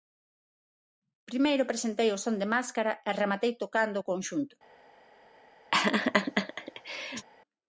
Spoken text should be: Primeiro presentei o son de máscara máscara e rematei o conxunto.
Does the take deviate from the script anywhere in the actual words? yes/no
yes